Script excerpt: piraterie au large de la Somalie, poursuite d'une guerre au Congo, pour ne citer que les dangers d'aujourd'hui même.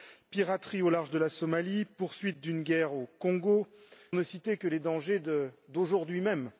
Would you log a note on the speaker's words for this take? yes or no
yes